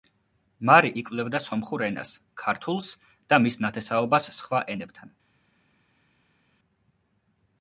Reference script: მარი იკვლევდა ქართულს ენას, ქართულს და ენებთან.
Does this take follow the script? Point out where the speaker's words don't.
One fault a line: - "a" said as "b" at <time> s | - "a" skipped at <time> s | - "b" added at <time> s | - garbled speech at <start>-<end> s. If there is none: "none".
- "ქართულს" said as "სომხურ" at 1.5 s
- "მის ნათესაობას სხვა" added at 3.5 s